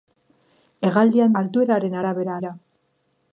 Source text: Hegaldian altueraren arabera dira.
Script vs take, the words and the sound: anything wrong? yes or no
no